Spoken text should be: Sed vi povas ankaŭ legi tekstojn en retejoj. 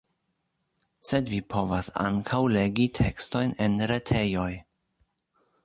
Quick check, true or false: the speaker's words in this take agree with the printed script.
true